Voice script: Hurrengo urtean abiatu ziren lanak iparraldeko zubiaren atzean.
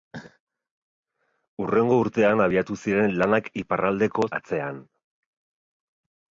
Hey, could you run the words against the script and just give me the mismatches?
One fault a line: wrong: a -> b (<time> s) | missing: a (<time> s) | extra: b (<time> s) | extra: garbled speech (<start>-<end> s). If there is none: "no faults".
missing: zubiaren (4.3 s)